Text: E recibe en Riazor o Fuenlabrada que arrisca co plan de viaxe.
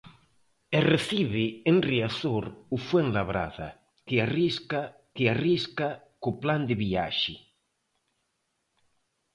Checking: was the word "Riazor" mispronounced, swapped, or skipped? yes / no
no